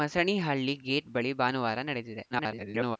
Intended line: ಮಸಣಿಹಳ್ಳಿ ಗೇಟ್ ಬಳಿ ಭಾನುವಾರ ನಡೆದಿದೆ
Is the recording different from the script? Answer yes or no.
yes